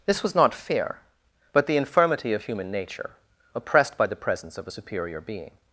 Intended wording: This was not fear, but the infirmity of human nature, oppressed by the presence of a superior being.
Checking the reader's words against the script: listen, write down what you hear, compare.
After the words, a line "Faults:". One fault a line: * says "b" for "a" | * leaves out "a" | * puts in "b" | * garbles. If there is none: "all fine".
This was not fear, but the infirmity of human nature, oppressed by the presence of a superior being.
Faults:
all fine